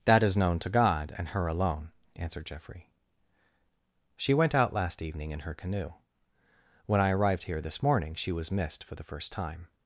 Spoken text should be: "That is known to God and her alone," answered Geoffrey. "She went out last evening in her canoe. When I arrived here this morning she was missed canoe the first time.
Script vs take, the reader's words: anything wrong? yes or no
yes